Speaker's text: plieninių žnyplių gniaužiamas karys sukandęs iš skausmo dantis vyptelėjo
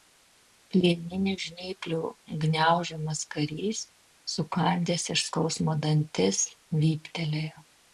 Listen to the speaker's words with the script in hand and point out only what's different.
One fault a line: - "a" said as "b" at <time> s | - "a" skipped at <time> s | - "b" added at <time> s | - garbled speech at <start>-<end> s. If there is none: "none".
none